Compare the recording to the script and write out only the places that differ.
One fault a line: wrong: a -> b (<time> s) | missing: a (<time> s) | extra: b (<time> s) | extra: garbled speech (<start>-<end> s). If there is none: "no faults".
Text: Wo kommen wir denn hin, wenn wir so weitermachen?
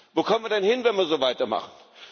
no faults